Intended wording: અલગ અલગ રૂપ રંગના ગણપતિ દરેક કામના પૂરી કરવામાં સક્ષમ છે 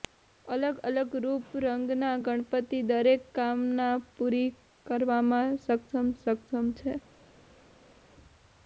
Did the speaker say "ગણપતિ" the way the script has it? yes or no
yes